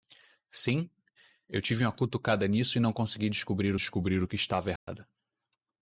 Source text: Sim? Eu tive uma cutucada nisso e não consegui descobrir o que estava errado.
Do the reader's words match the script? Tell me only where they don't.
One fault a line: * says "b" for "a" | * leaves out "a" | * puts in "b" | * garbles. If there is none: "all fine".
* puts in "descobrir"